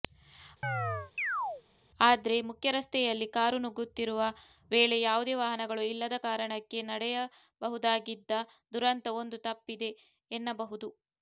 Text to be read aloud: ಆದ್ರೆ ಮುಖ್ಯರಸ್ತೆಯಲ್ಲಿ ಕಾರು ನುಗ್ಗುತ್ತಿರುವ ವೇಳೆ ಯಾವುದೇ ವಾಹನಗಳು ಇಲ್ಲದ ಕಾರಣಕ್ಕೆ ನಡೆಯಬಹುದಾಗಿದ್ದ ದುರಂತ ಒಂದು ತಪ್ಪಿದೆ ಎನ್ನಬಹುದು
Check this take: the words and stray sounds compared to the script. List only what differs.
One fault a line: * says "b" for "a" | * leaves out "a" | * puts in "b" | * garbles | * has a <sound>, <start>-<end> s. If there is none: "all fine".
* has a chirp, 0.6-1.6 s